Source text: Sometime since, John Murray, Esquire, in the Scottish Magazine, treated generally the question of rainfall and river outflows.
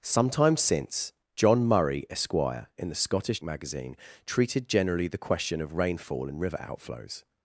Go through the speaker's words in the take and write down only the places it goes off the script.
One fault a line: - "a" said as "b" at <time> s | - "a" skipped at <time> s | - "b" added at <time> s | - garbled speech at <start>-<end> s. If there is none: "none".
none